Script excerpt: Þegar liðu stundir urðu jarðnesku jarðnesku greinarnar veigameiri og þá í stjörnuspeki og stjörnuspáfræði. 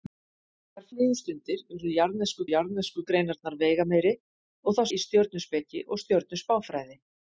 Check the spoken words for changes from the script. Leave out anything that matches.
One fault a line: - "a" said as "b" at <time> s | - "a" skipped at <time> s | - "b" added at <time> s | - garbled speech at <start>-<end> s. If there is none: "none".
none